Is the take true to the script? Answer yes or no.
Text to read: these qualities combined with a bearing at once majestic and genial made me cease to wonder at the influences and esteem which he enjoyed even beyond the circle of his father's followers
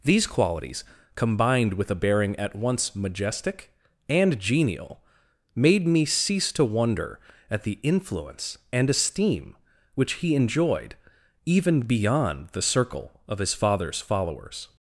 no